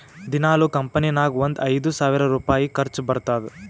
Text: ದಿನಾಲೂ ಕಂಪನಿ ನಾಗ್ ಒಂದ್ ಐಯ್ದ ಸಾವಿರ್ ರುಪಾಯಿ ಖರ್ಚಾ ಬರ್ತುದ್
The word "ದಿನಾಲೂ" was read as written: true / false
true